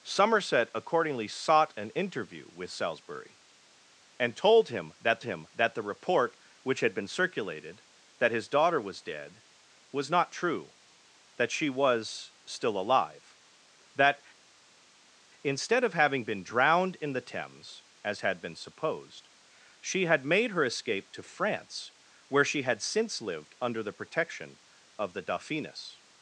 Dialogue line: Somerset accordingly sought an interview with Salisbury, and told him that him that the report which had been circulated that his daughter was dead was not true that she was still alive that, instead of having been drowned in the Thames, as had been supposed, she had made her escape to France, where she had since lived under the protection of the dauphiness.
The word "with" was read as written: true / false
true